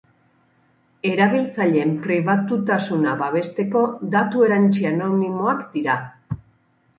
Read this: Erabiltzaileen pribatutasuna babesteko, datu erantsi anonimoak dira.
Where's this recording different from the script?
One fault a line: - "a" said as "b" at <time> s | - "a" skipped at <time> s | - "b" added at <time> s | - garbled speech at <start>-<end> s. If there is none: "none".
none